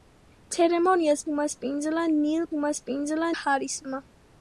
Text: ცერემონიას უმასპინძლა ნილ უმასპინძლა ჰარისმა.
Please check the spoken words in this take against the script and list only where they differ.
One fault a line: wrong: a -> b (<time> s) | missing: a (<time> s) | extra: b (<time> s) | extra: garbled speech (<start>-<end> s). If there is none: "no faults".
no faults